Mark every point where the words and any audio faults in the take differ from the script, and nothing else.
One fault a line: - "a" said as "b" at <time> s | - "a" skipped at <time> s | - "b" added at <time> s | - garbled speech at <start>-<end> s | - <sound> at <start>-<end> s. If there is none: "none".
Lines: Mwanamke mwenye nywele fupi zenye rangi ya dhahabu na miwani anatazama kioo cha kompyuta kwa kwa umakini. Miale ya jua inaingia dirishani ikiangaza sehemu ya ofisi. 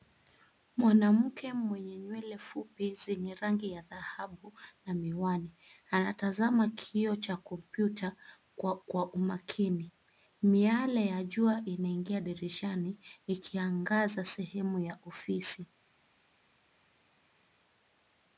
none